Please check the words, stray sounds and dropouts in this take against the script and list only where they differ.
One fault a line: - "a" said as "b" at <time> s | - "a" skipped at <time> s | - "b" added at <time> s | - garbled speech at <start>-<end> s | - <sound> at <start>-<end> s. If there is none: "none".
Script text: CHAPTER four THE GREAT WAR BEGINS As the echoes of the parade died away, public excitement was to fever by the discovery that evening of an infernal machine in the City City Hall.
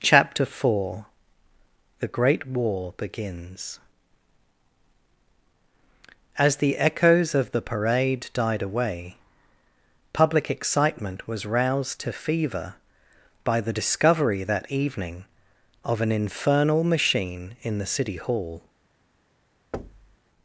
- "roused" added at 11.4 s
- "City" skipped at 18.1 s
- thud at 19.7-20.2 s